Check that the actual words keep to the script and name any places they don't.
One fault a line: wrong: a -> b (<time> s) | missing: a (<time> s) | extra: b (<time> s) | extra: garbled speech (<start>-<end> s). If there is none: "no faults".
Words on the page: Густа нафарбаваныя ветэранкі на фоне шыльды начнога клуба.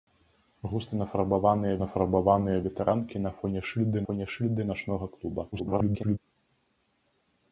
extra: нафарбаваныя (1.8 s)
extra: фоне шыльды (4.0 s)
extra: garbled speech (5.5-6.2 s)